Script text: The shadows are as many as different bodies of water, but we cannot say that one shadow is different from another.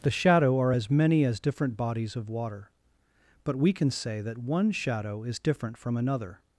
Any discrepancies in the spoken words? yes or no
yes